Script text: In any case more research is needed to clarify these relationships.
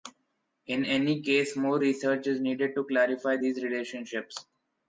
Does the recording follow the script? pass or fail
pass